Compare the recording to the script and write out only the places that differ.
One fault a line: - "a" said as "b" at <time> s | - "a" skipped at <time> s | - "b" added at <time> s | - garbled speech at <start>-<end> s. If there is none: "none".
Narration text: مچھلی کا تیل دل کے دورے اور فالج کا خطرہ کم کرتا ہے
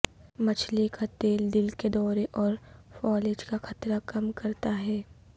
none